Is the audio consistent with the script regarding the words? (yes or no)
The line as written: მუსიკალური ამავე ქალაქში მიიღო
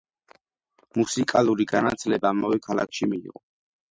no